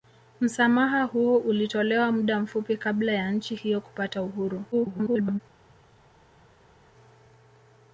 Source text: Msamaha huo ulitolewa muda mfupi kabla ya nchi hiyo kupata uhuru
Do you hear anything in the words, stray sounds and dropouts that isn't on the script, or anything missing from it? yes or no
yes